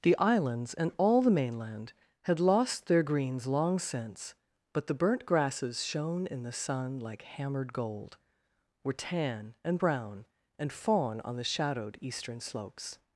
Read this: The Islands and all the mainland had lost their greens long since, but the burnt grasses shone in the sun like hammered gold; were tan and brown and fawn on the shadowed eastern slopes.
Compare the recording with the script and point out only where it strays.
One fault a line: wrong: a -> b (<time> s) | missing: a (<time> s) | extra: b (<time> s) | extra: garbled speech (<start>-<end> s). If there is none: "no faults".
no faults